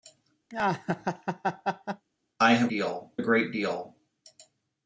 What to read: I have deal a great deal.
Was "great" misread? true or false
false